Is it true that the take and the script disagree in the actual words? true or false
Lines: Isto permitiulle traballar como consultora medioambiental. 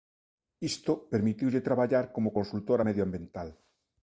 false